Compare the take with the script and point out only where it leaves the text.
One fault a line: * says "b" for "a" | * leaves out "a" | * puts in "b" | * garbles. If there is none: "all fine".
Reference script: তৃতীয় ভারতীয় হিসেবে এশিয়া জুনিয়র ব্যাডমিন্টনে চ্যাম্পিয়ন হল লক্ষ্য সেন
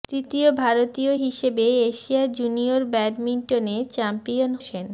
* leaves out "হল লক্ষ্য"